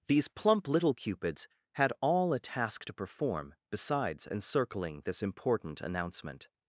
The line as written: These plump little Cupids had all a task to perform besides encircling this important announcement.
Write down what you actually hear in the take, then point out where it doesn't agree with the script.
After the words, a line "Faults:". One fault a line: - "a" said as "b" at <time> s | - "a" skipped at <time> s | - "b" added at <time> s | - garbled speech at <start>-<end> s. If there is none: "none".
These plump little Cupids had all a task to perform besides encircling this important announcement.
Faults:
none